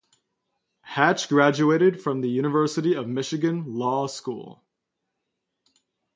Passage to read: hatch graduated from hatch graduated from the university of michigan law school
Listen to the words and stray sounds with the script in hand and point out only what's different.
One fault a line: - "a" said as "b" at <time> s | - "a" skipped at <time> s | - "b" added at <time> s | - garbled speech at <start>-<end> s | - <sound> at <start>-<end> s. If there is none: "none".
- "hatch graduated from" skipped at 2.2 s